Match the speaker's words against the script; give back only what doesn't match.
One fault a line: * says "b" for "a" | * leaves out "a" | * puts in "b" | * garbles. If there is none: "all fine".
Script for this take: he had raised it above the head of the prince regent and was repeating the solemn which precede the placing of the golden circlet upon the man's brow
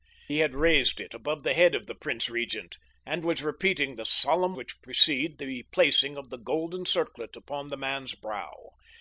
all fine